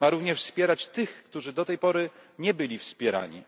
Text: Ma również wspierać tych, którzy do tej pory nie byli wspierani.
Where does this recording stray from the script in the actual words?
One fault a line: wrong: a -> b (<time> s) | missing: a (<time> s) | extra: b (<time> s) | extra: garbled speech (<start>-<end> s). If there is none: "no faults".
no faults